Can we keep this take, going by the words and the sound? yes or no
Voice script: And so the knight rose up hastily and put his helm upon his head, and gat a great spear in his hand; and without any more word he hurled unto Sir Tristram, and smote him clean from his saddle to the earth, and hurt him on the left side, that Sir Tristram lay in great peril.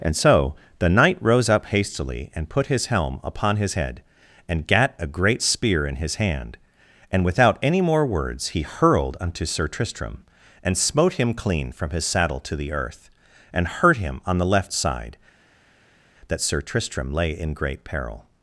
no